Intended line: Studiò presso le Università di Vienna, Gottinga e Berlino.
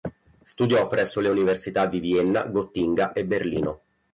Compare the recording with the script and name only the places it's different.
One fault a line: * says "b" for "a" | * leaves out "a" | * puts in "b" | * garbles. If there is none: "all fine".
all fine